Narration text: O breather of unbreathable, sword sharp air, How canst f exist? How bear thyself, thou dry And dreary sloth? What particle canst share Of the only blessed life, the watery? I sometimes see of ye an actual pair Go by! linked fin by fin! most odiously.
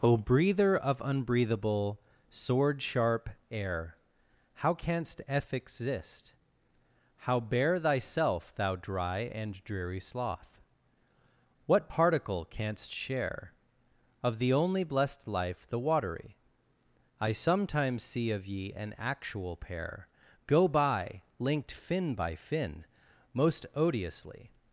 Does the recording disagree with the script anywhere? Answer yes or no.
no